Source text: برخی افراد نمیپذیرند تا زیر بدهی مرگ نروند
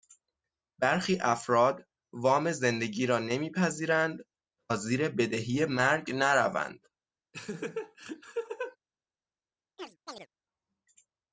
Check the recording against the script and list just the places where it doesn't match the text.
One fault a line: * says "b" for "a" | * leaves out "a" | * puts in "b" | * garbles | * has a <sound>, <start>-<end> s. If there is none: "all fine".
* puts in "وام زندگی را"
* has a laugh, 7.3-8.8 s
* has a chirp, 9.8-10.3 s